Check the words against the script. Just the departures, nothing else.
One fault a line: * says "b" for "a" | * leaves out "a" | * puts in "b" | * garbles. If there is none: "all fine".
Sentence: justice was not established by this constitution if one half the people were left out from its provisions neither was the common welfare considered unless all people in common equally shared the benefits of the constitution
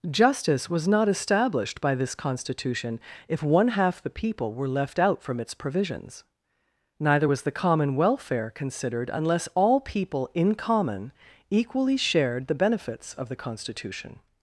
all fine